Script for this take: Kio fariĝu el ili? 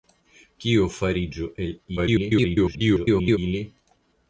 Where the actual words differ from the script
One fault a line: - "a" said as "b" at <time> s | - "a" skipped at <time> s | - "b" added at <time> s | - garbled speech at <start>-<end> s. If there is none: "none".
- garbled speech at 2.0-3.4 s